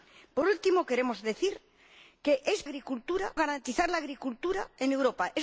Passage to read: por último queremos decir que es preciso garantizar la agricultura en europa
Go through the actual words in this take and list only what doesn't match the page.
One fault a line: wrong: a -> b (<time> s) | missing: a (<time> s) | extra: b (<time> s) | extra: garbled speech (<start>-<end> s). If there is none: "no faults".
wrong: preciso -> agricultura (2.6 s)